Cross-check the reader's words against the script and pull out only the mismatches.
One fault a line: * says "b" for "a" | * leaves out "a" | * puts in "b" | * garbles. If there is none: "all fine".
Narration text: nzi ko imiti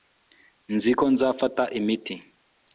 * puts in "nzafata"